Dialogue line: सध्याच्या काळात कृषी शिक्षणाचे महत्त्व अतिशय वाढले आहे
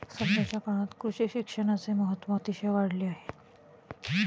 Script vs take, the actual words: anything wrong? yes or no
no